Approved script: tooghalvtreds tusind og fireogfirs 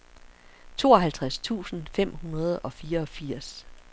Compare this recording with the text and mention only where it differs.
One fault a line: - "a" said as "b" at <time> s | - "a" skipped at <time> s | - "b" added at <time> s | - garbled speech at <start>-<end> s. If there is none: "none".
- "fem hundrede" added at 1.9 s